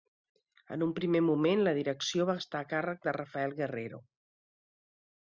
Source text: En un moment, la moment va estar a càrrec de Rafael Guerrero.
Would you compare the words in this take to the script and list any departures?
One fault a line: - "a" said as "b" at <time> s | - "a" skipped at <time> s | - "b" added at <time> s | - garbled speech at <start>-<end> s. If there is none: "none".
- "primer" added at 1.0 s
- "moment" said as "direcció" at 1.8 s